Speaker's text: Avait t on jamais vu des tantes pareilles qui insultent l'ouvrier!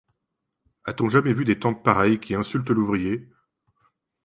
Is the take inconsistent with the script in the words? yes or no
yes